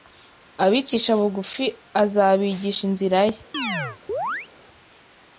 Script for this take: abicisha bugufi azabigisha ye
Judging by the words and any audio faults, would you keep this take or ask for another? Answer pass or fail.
fail